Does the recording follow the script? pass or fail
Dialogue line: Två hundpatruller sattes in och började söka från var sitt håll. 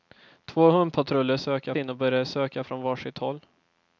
fail